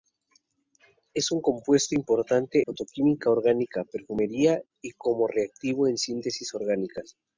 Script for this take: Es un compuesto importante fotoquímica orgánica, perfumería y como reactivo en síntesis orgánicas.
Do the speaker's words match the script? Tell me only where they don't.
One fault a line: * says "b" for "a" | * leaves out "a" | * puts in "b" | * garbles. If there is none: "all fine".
all fine